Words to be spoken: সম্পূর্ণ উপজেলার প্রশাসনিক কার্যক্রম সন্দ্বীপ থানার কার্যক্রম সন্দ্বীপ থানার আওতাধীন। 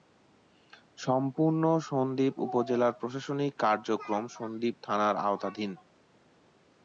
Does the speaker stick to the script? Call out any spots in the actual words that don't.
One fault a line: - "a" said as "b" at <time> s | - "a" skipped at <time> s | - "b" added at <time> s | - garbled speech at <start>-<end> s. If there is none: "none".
- "সন্দ্বীপ" added at 1.9 s
- "কার্যক্রম সন্দ্বীপ থানার" skipped at 5.1 s